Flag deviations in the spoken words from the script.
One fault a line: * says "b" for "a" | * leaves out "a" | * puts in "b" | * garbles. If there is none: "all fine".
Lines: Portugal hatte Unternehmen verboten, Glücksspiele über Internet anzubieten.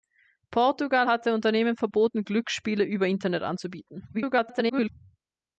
* garbles